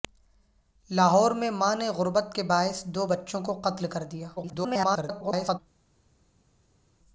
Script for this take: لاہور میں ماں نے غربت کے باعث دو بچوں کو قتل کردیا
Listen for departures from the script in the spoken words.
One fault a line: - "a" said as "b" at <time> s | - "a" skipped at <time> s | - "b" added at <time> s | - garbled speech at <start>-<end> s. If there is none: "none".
- garbled speech at 4.4-5.6 s